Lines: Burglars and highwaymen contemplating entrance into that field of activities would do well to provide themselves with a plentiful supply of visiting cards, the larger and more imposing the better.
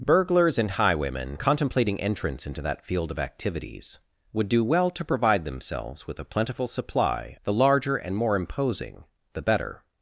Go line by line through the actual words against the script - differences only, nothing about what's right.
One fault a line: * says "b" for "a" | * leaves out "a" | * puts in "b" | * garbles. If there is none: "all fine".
* leaves out "of visiting cards"